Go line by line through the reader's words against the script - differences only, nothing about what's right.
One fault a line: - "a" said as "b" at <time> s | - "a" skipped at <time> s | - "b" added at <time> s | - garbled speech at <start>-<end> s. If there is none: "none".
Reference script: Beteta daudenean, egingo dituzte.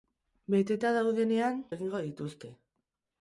none